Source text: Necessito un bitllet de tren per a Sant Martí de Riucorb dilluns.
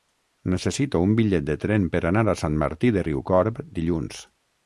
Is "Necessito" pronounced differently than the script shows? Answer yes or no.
no